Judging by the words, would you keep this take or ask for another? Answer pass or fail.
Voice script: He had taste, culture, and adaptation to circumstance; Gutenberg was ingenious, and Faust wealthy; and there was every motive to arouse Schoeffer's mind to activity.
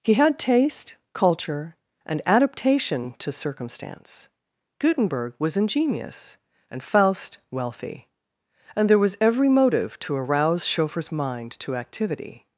pass